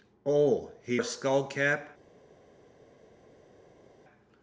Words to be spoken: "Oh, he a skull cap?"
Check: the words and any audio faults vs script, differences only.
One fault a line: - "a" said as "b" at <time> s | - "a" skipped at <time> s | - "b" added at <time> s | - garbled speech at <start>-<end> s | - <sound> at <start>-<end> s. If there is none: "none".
none